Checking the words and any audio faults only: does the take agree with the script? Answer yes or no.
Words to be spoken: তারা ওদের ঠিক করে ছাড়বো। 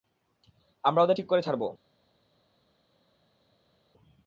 no